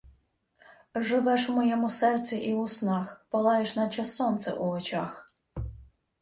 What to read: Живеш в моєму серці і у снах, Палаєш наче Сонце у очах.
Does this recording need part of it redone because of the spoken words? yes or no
no